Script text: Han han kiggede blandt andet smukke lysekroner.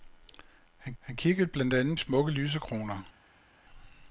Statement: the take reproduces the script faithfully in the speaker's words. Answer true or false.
true